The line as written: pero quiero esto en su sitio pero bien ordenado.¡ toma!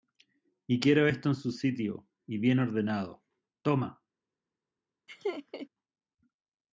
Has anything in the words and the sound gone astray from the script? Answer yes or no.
yes